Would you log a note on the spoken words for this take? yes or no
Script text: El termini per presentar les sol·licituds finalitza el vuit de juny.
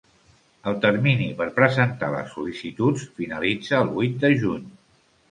no